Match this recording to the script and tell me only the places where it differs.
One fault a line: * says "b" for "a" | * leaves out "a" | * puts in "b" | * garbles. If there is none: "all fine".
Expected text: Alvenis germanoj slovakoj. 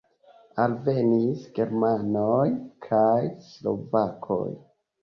* puts in "kaj"